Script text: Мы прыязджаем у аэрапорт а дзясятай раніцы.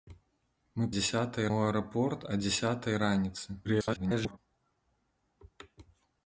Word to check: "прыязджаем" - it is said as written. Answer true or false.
false